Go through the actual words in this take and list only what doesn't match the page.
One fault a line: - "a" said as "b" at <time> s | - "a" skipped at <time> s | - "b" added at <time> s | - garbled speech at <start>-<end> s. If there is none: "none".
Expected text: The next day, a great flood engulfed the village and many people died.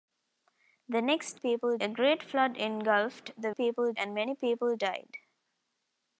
- "day" said as "people" at 1.4 s
- "village" said as "people" at 3.5 s